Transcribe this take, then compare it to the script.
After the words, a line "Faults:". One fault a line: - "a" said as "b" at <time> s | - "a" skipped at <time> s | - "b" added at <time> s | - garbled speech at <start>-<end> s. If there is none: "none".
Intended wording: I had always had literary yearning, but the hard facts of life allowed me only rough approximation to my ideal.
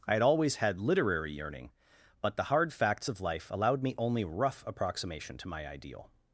I had always had literary yearning, but the hard facts of life allowed me only rough approximation to my ideal.
Faults:
none